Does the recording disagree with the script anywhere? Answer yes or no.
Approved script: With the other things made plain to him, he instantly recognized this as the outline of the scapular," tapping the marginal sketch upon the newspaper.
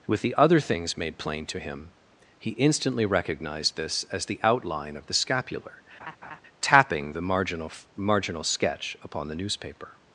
yes